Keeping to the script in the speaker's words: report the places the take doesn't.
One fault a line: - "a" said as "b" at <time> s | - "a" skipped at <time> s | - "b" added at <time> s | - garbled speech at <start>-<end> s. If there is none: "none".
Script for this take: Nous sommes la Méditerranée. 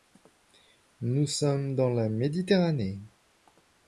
- "dans" added at 1.8 s